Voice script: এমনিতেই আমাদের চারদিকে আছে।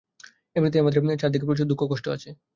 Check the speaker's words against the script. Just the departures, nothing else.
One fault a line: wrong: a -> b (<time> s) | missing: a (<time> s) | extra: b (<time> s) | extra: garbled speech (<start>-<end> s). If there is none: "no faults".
extra: প্রচুর দুঃখ কষ্ট (1.5 s)